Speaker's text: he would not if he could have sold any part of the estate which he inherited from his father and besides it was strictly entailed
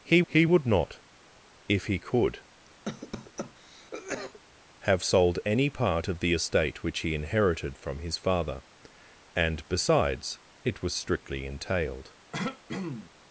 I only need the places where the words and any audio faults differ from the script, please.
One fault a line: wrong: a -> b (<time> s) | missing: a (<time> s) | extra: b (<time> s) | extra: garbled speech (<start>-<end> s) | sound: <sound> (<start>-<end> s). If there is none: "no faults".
extra: he (0.2 s)
sound: cough (2.8-4.4 s)
sound: throat clearing (12.3-13.1 s)